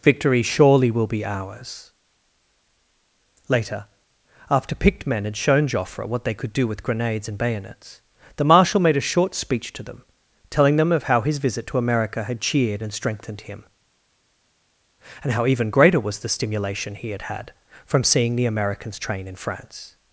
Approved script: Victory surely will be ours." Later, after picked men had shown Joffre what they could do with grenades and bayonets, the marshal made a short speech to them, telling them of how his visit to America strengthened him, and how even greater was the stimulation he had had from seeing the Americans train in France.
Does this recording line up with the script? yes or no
no